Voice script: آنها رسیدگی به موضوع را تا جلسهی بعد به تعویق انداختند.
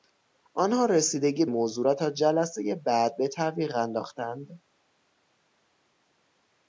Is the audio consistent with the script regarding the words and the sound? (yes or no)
no